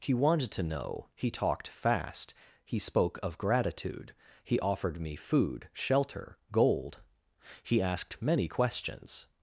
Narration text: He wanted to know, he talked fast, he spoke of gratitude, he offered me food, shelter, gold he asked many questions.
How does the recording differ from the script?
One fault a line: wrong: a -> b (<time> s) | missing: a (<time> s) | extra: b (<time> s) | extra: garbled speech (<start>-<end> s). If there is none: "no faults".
no faults